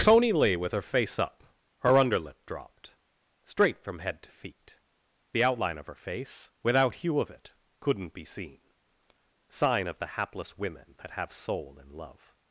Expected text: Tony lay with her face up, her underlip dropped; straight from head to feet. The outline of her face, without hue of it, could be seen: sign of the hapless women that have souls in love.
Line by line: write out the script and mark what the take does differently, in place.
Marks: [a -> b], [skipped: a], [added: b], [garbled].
Tony lay with her face up, her underlip dropped; straight from head to feet. The outline of her face, without hue of it, [could -> couldn't] be seen: sign of the hapless women that have [souls -> soul] in love.